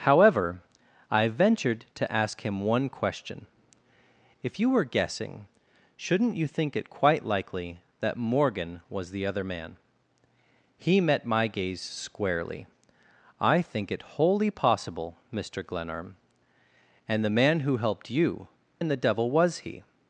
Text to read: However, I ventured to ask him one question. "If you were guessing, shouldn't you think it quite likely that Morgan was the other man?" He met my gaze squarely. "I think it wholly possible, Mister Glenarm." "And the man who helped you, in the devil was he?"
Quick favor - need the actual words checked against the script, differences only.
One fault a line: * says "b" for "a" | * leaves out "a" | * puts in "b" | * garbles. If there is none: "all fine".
all fine